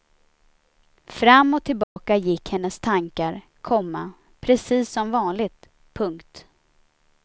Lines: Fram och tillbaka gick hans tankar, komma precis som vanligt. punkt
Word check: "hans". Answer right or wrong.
wrong